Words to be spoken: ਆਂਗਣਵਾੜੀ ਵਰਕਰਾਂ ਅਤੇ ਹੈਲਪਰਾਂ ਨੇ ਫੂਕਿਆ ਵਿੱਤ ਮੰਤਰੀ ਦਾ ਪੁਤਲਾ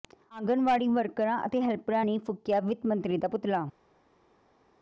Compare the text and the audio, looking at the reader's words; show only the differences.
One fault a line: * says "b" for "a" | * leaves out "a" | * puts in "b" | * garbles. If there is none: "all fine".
all fine